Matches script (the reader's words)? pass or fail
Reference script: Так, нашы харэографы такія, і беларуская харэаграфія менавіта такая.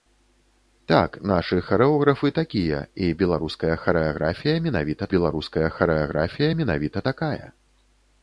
fail